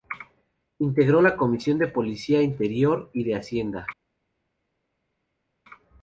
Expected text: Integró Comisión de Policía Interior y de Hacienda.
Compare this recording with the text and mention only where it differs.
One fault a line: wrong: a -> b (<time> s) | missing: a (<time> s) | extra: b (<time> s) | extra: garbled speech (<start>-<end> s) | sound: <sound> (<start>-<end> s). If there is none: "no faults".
extra: la (1.2 s)